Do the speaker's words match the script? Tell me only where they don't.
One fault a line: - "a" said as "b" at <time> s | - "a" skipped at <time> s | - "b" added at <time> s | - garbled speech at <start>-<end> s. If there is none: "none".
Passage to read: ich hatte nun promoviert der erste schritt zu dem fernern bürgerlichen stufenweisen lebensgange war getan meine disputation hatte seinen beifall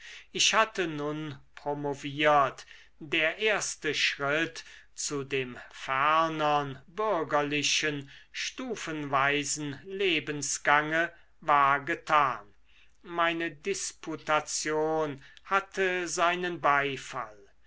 none